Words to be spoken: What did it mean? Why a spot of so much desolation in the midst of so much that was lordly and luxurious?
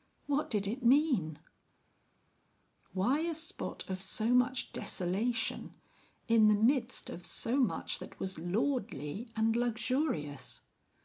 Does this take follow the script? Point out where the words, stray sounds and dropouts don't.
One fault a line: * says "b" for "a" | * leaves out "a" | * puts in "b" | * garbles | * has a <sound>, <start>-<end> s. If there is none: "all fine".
all fine